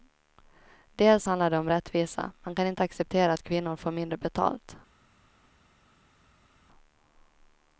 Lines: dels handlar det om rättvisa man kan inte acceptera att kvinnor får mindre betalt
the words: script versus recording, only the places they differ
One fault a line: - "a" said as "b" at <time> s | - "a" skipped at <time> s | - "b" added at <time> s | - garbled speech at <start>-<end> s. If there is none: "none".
none